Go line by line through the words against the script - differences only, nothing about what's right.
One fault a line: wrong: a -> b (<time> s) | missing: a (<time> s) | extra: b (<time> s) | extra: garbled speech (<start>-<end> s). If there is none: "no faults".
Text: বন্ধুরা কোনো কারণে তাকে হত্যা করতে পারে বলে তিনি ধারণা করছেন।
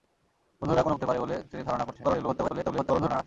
missing: কারণে তাকে হত্যা (0.9 s)
extra: garbled speech (2.0-3.2 s)